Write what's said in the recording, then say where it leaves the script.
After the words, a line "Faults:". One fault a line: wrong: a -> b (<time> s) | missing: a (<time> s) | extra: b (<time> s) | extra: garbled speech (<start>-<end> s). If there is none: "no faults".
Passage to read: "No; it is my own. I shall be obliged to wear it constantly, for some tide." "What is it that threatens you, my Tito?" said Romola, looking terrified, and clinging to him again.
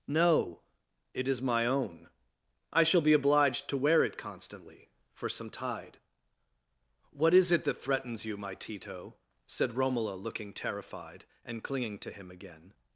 "No; it is my own. I shall be obliged to wear it constantly, for some tide." "What is it that threatens you, my Tito?" said Romola, looking terrified, and clinging to him again.
Faults:
no faults